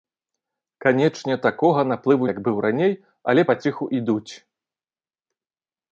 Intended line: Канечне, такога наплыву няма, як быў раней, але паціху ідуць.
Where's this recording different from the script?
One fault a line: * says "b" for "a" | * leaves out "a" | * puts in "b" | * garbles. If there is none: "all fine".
* leaves out "няма"